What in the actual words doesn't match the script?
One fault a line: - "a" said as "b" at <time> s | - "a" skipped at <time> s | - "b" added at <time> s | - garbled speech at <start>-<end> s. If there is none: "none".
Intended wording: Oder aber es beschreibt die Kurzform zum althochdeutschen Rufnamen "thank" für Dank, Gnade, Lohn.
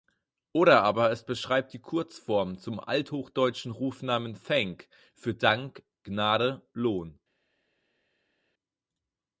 none